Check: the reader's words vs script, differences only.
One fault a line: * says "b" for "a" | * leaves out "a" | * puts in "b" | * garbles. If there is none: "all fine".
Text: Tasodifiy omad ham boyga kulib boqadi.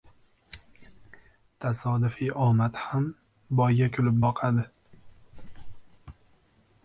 all fine